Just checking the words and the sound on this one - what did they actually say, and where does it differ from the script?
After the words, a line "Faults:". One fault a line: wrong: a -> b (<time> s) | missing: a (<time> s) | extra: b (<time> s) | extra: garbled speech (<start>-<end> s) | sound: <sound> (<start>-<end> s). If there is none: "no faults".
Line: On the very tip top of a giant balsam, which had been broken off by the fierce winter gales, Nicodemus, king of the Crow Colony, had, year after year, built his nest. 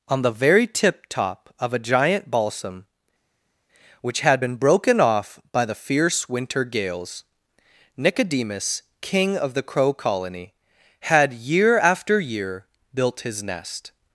On the very tip top of a giant balsam, which had been broken off by the fierce winter gales, Nicodemus, king of the Crow Colony, had, year after year, built his nest.
Faults:
no faults